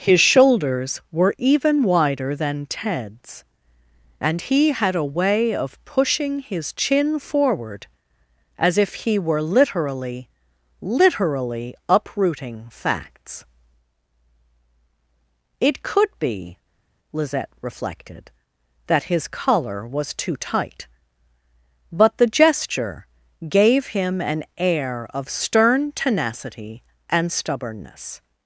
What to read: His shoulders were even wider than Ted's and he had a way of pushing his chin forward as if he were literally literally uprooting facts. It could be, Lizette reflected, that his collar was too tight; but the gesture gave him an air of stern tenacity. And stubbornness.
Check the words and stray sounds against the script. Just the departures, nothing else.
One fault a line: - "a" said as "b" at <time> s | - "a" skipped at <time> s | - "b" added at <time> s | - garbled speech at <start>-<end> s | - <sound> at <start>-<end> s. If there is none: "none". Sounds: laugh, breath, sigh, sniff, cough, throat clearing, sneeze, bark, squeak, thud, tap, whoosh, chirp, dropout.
none